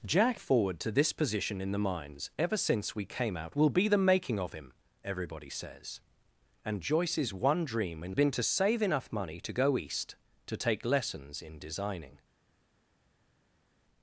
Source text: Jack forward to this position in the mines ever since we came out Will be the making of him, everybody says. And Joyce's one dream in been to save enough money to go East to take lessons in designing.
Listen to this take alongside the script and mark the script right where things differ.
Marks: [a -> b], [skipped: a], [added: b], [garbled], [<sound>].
Jack forward to this position in the mines ever since we came out Will be the making of him, everybody says. And Joyce's one dream in been to save enough money to go East to take lessons in designing.